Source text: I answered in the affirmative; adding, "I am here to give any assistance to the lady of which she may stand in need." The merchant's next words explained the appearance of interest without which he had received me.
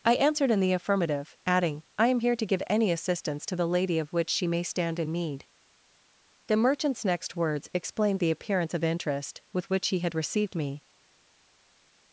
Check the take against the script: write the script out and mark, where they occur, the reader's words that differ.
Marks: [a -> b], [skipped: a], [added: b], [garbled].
I answered in the affirmative; adding, "I am here to give any assistance to the lady of which she may stand in need." The merchant's next words explained the appearance of interest [without -> with] which he had received me.